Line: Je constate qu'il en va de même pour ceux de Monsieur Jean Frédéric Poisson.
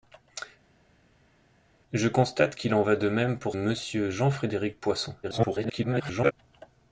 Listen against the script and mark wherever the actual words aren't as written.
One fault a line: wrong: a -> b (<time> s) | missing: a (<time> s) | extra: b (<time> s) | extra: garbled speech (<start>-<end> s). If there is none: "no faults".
missing: ceux de (3.6 s)
extra: garbled speech (5.2-6.3 s)